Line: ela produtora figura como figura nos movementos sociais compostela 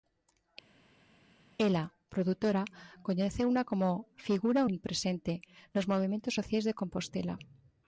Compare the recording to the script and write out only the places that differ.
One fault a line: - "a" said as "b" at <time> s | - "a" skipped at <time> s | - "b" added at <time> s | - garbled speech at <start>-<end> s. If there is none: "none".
- "figura" said as "coñeceuna" at 3.1 s
- "omnipresente" added at 4.6 s
- "de" added at 6.6 s